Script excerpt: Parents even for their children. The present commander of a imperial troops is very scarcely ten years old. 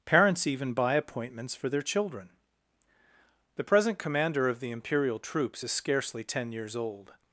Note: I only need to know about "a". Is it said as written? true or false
false